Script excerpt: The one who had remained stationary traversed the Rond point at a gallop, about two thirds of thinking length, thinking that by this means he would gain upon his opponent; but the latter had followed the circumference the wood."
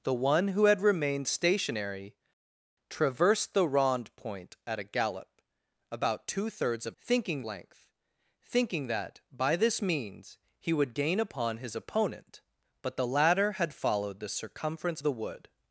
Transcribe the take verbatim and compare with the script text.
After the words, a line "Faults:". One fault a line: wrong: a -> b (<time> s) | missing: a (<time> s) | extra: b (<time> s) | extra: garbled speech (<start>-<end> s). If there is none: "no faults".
The one who had remained stationary traversed the Rond point at a gallop, about two thirds of thinking length, thinking that by this means he would gain upon his opponent; but the latter had followed the circumference the wood."
Faults:
no faults